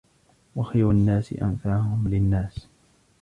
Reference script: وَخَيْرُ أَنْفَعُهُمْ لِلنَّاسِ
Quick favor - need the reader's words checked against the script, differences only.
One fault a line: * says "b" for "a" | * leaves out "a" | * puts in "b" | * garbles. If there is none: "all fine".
* puts in "النَّاسِ"